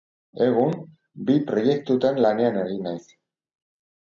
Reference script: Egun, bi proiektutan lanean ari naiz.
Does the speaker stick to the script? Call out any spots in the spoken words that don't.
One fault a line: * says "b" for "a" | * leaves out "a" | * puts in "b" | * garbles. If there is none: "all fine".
all fine